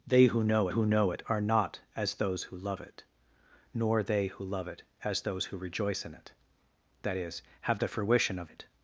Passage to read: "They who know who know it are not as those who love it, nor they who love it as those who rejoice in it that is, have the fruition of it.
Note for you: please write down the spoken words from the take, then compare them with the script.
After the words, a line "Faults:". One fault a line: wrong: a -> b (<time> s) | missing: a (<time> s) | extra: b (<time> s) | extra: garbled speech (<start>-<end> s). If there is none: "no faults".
"They who know who know it are not as those who love it, nor they who love it as those who rejoice in it that is, have the fruition of it.
Faults:
no faults